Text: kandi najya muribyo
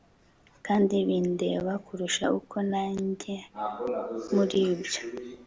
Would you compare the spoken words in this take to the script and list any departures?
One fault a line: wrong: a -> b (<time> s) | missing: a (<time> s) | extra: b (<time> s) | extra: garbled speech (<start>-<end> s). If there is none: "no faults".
extra: bindeba kurusha uko (1.1 s)